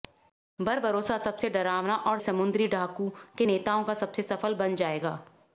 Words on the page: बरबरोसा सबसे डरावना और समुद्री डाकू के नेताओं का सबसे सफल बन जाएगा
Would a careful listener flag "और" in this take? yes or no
no